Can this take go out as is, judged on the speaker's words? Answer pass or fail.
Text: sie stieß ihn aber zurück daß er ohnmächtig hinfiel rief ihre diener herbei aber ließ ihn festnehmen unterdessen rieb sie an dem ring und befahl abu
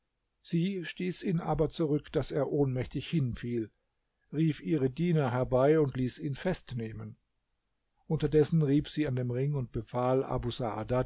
fail